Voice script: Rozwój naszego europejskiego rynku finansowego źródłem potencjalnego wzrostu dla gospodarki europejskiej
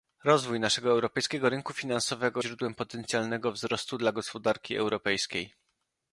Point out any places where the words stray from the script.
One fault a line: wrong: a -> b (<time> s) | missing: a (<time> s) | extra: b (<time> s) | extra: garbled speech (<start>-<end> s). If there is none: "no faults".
no faults